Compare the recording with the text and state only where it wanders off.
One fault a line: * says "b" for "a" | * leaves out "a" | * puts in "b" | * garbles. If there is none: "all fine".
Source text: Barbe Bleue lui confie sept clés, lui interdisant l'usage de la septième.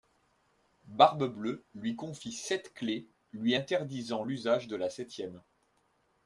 all fine